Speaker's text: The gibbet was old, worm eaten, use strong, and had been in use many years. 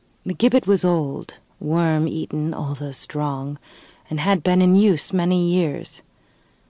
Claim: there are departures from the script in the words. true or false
true